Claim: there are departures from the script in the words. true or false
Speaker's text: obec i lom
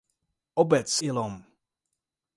false